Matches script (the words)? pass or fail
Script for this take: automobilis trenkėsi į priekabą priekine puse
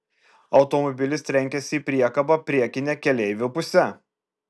fail